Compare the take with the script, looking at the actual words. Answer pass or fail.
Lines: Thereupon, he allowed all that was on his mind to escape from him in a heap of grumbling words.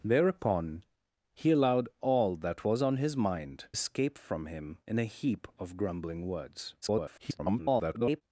fail